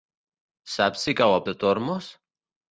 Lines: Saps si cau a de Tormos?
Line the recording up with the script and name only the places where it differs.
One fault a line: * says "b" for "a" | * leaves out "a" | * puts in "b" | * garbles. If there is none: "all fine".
all fine